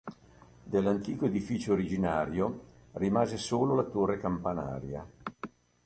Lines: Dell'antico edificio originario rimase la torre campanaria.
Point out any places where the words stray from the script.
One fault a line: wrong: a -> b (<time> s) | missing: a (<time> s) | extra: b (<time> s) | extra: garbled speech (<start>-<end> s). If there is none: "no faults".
extra: solo (3.4 s)